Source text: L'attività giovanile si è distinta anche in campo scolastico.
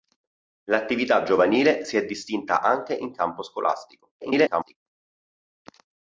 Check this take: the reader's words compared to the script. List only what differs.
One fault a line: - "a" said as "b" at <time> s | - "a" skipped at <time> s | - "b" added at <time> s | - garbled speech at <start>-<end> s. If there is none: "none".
- garbled speech at 4.2-4.8 s